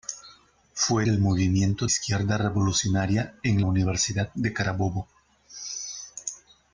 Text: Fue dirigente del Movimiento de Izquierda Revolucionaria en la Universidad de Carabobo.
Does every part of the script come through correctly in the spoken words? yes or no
no